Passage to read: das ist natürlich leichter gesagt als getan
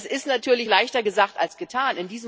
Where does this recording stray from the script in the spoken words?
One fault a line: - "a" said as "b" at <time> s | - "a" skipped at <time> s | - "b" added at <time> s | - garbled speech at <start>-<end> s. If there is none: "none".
none